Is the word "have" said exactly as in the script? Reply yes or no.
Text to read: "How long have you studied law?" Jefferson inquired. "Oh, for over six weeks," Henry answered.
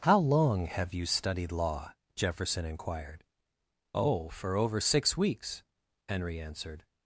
yes